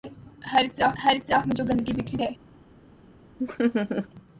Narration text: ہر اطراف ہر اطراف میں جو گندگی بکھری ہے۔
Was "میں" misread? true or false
false